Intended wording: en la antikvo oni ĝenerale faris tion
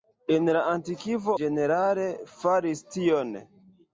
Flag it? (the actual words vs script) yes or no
yes